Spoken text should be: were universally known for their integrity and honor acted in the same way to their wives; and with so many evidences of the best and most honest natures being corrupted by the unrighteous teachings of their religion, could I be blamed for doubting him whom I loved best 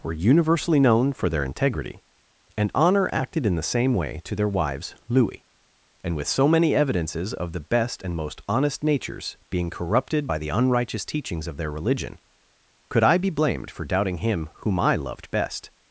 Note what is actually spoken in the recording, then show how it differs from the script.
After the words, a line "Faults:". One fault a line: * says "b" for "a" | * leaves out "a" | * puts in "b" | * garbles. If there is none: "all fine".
were universally known for their integrity and honor acted in the same way to their wives; louis and with so many evidences of the best and most honest natures being corrupted by the unrighteous teachings of their religion, could I be blamed for doubting him whom I loved best
Faults:
* puts in "louis"